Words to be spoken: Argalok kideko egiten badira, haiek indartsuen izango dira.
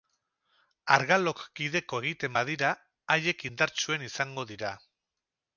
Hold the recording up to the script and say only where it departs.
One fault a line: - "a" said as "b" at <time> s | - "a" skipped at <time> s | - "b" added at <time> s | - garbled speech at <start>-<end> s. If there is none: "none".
none